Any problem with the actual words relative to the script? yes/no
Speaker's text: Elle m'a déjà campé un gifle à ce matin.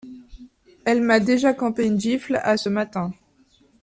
yes